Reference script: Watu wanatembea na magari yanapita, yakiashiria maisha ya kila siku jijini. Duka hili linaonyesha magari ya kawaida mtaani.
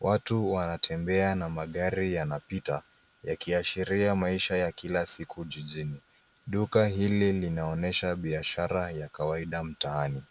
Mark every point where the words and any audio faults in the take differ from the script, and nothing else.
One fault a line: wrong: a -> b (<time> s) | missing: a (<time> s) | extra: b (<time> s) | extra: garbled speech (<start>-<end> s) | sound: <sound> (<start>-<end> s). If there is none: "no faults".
wrong: magari -> biashara (8.2 s)